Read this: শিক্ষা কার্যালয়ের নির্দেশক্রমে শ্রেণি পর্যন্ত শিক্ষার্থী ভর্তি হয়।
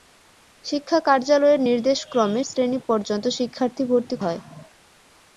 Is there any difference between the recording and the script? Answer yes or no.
no